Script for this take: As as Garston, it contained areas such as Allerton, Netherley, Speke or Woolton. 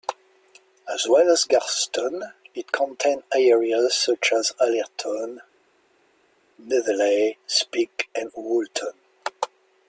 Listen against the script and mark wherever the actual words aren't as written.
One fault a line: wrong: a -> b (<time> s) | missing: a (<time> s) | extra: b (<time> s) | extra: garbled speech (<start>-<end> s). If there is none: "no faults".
extra: well (1.1 s)
wrong: or -> and (8.1 s)